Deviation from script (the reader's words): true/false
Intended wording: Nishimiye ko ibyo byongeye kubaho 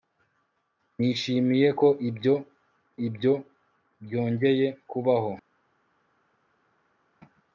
true